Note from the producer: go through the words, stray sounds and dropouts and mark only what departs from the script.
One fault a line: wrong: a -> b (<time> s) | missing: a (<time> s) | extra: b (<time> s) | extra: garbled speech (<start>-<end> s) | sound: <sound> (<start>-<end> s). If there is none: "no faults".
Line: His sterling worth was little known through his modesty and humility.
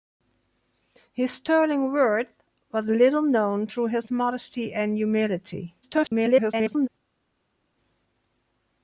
extra: garbled speech (5.8-6.9 s)